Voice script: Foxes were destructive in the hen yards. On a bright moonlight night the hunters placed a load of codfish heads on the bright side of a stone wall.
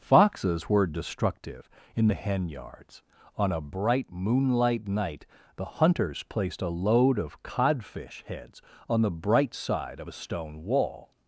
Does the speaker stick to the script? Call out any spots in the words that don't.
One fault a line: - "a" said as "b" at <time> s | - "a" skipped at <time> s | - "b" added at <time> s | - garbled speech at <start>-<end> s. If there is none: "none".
none